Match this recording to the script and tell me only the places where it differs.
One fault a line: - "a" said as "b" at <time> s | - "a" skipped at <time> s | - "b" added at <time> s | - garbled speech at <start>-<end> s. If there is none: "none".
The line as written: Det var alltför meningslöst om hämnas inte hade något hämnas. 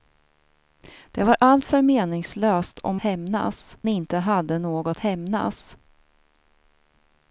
none